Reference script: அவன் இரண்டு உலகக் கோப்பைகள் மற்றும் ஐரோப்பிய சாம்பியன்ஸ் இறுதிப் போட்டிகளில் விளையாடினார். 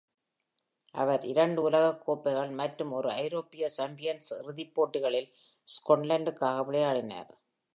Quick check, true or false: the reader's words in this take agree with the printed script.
false